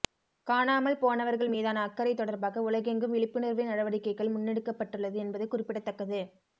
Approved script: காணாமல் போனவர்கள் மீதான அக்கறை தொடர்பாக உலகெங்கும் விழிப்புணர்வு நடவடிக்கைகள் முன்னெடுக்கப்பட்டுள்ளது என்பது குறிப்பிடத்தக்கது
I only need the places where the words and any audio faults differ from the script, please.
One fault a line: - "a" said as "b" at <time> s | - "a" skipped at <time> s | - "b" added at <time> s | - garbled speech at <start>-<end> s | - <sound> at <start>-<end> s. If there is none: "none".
none